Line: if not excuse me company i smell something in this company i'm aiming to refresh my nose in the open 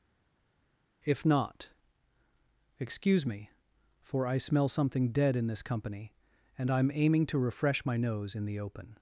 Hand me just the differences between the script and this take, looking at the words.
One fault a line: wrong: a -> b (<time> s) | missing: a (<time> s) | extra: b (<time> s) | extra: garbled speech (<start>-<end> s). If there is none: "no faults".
wrong: company -> for (4.0 s)
extra: dead (5.1 s)
extra: and (6.6 s)